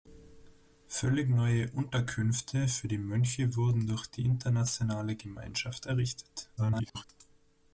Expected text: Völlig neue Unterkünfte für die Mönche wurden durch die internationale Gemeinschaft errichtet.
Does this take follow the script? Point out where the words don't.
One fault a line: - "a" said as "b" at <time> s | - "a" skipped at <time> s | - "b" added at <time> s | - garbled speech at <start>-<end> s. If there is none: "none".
- garbled speech at 6.6-7.0 s